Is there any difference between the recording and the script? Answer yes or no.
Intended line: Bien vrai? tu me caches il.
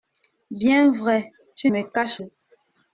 no